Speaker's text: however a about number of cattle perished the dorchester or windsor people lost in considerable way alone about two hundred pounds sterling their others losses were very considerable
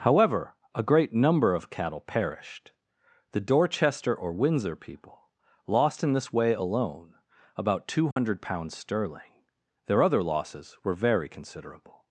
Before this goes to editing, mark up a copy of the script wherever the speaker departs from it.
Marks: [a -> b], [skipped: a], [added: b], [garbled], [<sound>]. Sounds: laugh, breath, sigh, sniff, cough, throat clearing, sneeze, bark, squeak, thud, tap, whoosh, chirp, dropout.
however a [about -> great] number of cattle perished the dorchester or windsor people lost in [considerable -> this] way alone about two hundred [dropout] pounds sterling their [others -> other] losses were very considerable